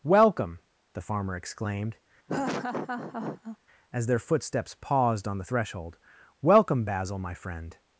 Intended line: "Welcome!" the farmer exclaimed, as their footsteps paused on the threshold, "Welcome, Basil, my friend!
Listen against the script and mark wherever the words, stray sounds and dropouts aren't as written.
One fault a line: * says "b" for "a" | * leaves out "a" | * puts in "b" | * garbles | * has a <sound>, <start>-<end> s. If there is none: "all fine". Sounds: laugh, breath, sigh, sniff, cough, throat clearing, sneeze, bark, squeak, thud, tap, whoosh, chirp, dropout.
* has a laugh, 2.3-3.6 s